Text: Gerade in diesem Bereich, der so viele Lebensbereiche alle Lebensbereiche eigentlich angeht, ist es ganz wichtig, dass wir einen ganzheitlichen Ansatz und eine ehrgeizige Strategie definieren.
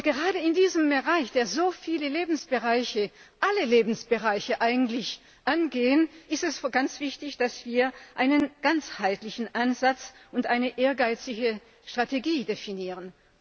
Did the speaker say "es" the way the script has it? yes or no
yes